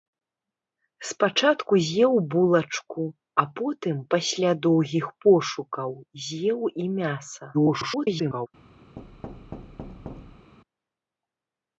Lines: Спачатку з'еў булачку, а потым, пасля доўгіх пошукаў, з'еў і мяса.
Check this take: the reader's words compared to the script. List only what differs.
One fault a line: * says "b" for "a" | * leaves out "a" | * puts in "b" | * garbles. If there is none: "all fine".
* garbles